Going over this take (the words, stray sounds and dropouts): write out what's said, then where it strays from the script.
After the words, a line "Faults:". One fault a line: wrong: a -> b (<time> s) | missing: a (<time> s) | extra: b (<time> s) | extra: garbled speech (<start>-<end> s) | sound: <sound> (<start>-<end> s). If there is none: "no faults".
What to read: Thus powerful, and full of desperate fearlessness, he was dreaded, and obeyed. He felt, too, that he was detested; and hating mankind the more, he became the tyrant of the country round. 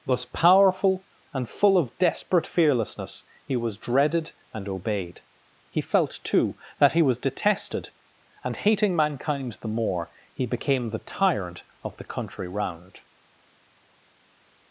Thus powerful, and full of desperate fearlessness, he was dreaded, and obeyed. He felt, too, that he was detested; and hating mankind the more, he became the tyrant of the country round.
Faults:
no faults